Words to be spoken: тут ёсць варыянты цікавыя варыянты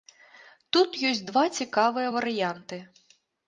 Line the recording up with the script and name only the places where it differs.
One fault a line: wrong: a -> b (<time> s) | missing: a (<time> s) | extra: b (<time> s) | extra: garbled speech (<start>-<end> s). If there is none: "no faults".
wrong: варыянты -> два (1.3 s)